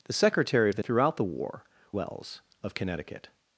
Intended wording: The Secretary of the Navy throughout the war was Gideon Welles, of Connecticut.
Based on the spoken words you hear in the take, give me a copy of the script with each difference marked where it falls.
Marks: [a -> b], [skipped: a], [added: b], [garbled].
The Secretary of the [skipped: Navy] throughout the war [skipped: was Gideon] Welles, of Connecticut.